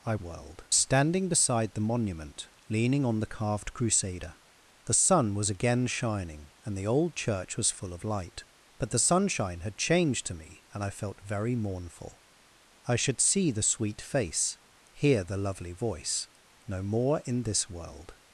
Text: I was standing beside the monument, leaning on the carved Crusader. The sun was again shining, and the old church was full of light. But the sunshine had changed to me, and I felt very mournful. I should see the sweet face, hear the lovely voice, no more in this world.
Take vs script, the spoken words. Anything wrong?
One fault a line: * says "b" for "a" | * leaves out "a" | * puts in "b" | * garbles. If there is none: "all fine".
* says "world" for "was"